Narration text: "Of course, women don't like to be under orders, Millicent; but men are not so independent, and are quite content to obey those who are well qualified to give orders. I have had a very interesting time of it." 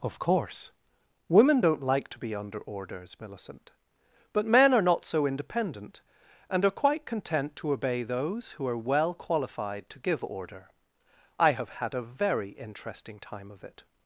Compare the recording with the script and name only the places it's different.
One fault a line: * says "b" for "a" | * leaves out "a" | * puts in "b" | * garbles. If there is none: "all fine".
* says "order" for "orders"